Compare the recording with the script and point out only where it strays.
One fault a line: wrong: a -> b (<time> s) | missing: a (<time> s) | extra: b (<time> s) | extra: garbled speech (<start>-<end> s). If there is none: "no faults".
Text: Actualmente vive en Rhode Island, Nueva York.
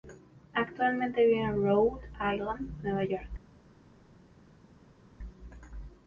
no faults